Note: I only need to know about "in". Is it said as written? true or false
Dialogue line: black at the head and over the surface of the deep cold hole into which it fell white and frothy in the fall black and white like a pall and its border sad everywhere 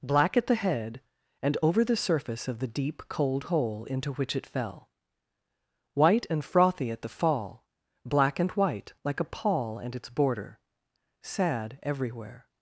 false